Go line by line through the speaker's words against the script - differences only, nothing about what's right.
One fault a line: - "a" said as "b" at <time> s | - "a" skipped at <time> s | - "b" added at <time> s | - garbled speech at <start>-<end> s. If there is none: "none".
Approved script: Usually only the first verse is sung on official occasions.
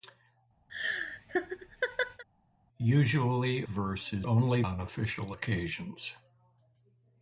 - "only the first" skipped at 3.6 s
- "sung" said as "only" at 4.2 s